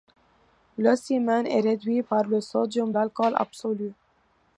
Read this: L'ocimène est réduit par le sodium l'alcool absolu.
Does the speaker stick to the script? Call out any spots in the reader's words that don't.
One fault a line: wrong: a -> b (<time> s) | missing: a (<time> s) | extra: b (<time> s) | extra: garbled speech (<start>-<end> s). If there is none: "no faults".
no faults